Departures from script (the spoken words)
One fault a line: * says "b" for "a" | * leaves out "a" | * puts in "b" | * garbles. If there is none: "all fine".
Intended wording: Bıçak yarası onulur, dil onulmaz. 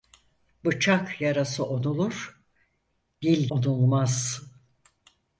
all fine